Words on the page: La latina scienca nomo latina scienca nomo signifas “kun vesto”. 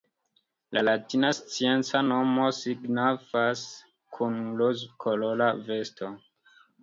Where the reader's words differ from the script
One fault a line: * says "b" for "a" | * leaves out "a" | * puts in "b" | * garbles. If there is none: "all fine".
* leaves out "latina scienca nomo"
* puts in "rozkolora"